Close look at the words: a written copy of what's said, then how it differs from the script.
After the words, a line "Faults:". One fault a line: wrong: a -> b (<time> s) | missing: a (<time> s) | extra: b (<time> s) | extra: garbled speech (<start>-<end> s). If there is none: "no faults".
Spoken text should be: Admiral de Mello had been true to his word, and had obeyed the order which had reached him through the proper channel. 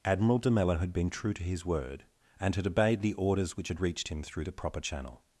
Admiral de Mello had been true to his word, and had obeyed the orders which had reached him through the proper channel.
Faults:
wrong: order -> orders (3.1 s)